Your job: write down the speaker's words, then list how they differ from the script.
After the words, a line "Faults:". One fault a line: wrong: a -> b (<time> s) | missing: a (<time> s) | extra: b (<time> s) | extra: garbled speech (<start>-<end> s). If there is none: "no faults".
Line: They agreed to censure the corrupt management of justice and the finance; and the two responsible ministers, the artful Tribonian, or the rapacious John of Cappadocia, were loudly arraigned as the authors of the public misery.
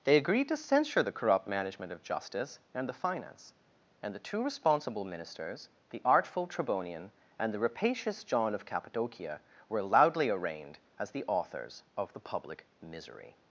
They agreed to censure the corrupt management of justice and the finance; and the two responsible ministers, the artful Tribonian, and the rapacious John of Cappadocia, were loudly arraigned as the authors of the public misery.
Faults:
wrong: or -> and (7.4 s)